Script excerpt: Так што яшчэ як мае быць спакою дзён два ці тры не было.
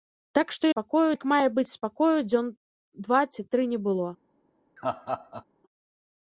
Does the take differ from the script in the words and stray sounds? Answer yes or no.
yes